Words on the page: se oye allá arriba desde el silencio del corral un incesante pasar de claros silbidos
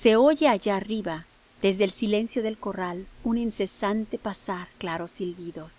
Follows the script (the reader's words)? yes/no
no